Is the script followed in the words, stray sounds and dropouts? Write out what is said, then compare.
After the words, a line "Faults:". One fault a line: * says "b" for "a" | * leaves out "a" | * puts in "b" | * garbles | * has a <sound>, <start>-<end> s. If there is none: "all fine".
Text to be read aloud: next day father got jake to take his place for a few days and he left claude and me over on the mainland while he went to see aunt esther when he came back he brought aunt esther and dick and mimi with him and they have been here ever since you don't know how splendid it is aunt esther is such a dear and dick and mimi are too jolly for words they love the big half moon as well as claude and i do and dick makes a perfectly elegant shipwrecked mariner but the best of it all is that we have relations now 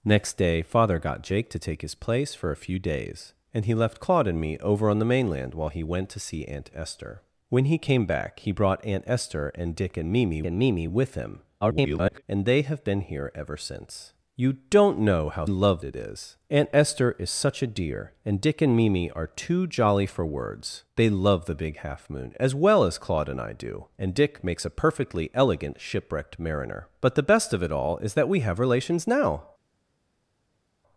next day father got jake to take his place for a few days and he left claude and me over on the mainland while he went to see aunt esther when he came back he brought aunt esther and dick and mimi and mimi with him [garbled] and they have been here ever since you don't know how love it is aunt esther is such a dear and dick and mimi are too jolly for words they love the big half moon as well as claude and i do and dick makes a perfectly elegant shipwrecked mariner but the best of it all is that we have relations now
Faults:
* puts in "and mimi"
* garbles
* says "love" for "splendid"